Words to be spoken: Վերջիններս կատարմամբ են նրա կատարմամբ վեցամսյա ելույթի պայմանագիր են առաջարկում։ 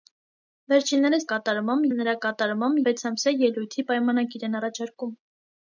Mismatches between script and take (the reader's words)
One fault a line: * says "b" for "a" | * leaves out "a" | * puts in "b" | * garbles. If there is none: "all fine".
all fine